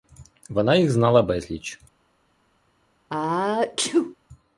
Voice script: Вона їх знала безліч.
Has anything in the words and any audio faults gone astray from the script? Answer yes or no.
yes